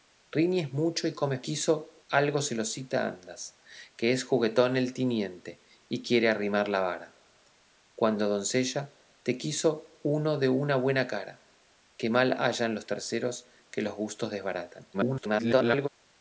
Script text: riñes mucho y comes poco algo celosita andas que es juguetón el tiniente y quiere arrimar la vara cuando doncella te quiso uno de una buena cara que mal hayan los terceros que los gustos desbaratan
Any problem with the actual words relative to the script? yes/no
yes